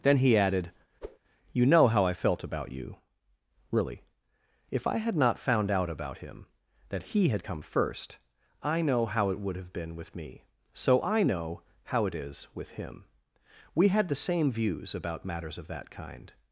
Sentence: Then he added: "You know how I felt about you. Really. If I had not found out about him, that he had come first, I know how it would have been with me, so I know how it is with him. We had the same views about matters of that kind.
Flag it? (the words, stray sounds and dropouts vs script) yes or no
yes